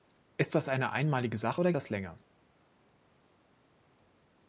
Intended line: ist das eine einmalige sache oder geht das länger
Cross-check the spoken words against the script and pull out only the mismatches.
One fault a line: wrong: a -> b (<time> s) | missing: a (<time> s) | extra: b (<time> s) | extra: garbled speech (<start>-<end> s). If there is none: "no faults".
missing: geht (1.7 s)